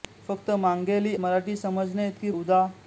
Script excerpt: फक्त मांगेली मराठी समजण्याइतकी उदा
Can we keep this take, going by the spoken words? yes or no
yes